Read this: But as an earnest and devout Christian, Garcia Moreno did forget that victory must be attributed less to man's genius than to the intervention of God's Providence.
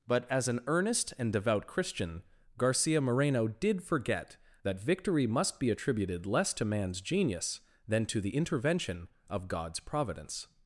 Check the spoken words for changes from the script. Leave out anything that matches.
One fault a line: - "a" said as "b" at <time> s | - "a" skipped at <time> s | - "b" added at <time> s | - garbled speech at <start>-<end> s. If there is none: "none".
none